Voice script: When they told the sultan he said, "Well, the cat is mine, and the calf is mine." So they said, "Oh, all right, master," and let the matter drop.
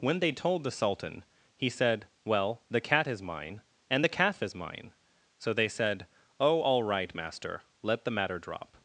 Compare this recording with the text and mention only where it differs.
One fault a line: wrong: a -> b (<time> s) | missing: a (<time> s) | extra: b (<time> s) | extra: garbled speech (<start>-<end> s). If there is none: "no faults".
missing: and (7.6 s)